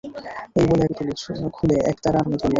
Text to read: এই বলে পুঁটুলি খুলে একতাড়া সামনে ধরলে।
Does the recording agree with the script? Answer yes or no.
yes